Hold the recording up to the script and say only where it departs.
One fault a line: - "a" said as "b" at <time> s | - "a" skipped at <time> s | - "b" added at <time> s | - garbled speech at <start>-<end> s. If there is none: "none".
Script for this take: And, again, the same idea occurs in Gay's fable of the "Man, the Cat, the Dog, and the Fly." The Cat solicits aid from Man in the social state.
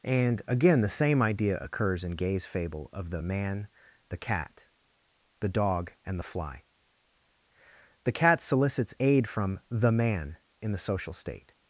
- "the" added at 9.7 s